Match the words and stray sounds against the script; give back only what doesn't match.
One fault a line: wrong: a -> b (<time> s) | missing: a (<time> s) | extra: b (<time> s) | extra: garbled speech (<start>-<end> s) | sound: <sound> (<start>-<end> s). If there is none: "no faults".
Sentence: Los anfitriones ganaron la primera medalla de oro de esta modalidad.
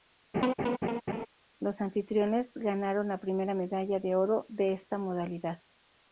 sound: laugh (0.3-1.3 s)